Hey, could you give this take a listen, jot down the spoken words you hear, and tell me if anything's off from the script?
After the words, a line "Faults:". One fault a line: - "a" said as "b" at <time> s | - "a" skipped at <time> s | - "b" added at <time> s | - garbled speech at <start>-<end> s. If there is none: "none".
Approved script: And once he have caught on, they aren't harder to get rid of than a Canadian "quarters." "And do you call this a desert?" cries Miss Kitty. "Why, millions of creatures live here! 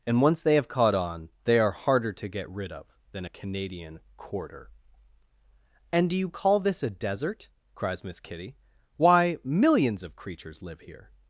And once they have caught on, they are harder to get rid of than a Canadian "quarter." "And do you call this a desert?" cries Miss Kitty. "Why, millions of creatures live here!
Faults:
- "he" said as "they" at 0.4 s
- "aren't" said as "are" at 1.6 s
- "quarters" said as "quarter" at 4.2 s